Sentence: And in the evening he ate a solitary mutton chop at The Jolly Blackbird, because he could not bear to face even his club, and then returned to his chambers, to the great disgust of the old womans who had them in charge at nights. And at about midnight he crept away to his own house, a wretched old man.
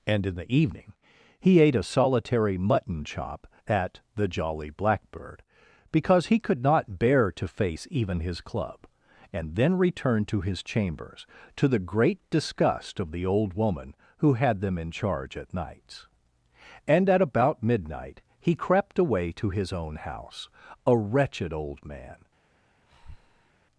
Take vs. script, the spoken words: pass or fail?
fail